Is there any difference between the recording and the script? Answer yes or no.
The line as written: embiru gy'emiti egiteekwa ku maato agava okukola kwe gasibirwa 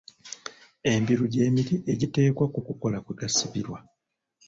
yes